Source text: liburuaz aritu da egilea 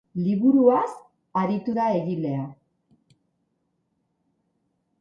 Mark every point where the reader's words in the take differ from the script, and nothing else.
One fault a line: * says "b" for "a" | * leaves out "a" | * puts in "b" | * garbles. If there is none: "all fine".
all fine